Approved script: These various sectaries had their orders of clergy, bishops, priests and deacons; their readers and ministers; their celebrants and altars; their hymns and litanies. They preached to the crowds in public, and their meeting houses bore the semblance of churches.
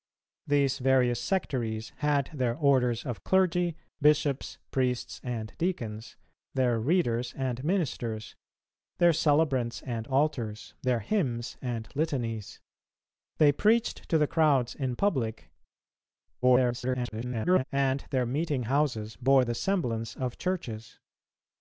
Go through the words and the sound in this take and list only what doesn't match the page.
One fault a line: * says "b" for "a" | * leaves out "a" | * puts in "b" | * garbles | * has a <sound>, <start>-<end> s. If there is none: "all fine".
* garbles